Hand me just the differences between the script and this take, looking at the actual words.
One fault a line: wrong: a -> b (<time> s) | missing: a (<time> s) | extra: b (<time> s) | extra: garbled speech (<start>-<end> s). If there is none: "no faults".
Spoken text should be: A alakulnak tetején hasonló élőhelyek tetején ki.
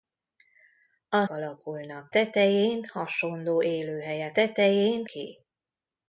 no faults